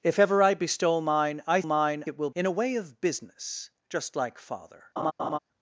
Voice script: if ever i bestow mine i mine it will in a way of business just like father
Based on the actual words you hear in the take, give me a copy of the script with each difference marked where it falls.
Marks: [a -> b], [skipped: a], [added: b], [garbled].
if ever i bestow mine i mine it will in a way of business just like father